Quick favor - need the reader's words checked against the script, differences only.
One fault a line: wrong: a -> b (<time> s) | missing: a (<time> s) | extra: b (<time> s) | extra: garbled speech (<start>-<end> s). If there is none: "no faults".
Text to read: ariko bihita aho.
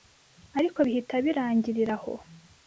extra: birangirira (1.2 s)